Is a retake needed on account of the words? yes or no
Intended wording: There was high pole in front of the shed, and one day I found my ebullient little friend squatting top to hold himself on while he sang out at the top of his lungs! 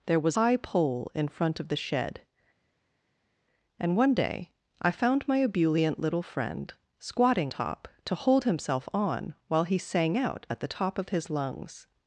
no